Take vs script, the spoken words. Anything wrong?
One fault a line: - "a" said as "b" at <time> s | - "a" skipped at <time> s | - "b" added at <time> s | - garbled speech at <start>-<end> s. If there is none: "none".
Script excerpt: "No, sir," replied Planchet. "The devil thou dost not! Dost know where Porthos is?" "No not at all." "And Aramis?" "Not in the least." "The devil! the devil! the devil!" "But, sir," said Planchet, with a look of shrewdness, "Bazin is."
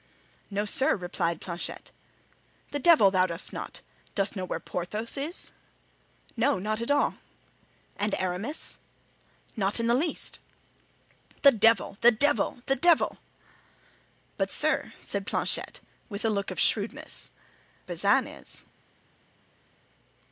none